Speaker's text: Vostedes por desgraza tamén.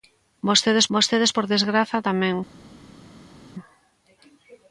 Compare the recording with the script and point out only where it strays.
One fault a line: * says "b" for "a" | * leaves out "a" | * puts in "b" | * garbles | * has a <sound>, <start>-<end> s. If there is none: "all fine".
* puts in "vostedes"